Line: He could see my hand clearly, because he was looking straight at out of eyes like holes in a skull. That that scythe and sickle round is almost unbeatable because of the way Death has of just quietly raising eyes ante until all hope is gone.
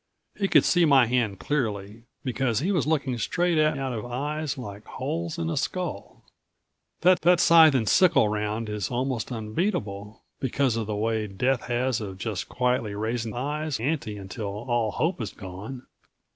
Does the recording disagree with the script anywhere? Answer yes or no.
no